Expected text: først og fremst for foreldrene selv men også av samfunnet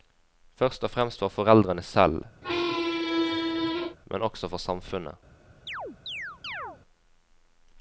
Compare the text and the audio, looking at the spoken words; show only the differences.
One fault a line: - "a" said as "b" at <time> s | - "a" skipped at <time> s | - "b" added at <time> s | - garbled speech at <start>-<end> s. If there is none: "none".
- "av" said as "for" at 4.5 s